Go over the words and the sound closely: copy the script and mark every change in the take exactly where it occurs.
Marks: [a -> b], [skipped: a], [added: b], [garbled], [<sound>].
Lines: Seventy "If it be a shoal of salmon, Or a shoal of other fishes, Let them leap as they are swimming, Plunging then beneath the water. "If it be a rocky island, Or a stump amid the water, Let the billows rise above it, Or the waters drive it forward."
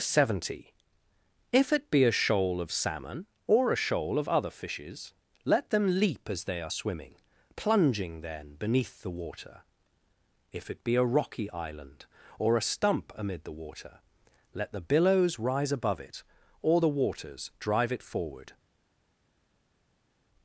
Seventy "If it be a shoal of salmon, Or a shoal of other fishes, Let them leap as they are swimming, Plunging then beneath the water. "If it be a rocky island, Or a stump amid the water, Let the billows rise above it, Or the waters drive it forward."